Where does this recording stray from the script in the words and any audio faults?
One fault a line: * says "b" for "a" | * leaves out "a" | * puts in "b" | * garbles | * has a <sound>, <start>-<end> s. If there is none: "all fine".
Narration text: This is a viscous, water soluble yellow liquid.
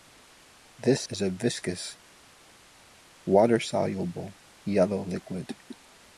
all fine